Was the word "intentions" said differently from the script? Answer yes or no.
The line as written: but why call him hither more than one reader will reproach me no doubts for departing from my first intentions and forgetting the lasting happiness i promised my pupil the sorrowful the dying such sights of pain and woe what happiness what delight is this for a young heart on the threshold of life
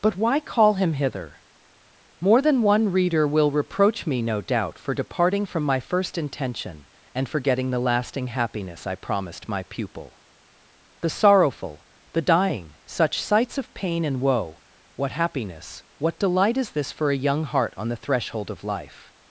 yes